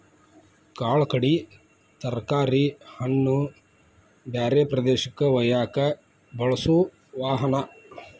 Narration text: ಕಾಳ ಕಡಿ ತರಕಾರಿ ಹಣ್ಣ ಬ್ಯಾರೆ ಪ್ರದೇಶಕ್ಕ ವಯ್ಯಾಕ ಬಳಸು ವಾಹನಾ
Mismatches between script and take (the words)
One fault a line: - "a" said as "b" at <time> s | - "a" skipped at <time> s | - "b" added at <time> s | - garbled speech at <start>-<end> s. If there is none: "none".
none